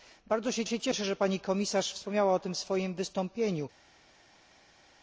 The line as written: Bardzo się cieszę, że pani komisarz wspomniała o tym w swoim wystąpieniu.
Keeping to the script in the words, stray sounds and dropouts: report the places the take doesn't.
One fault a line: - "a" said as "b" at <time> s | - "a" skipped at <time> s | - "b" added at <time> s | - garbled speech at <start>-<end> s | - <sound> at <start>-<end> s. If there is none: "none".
- "się" added at 0.7 s